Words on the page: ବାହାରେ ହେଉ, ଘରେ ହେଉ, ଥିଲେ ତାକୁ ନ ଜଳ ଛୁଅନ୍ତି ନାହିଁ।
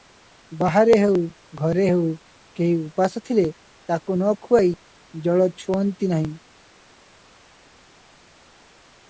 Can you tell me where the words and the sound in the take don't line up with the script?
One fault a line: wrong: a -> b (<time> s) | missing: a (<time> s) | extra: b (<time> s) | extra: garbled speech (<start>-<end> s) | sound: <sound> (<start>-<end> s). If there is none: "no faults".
extra: କେହି ଉପାସ (2.6 s)
extra: ଖୁଆଇ (4.4 s)